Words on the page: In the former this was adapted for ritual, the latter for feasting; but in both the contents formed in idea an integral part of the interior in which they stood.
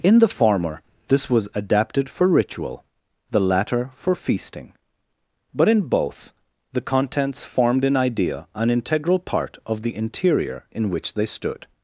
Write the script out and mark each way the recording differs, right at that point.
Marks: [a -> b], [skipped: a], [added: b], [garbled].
In the former this was adapted for ritual, the latter for feasting; but in both the contents formed in idea an integral part of the interior in which they stood.